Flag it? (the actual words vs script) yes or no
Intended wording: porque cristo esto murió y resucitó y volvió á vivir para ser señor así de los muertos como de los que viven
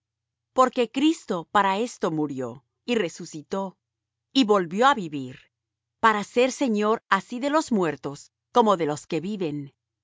yes